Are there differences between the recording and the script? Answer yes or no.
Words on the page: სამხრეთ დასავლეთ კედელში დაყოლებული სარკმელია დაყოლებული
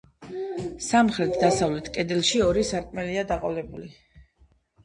yes